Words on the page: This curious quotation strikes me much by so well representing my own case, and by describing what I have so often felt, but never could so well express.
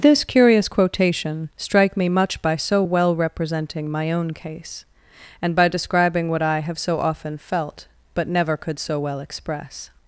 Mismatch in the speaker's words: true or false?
true